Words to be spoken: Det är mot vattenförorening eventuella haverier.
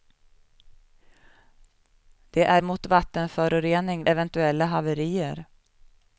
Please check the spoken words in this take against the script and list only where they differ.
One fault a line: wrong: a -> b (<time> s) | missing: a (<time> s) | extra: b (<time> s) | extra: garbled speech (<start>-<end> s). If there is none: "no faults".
no faults